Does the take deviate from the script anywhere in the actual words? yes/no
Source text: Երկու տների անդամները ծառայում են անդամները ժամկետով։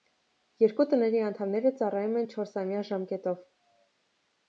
yes